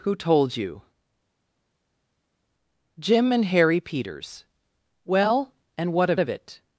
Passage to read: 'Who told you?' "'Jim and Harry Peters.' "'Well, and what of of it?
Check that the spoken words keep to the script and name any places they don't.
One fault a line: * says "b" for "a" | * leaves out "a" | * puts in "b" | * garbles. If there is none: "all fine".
all fine